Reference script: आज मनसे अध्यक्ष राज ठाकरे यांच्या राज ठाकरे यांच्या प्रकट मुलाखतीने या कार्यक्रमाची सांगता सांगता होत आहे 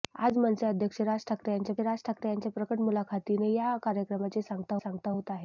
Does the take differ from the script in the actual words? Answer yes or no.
no